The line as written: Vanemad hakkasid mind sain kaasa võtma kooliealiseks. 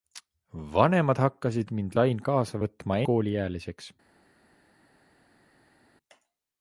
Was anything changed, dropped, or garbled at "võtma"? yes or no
no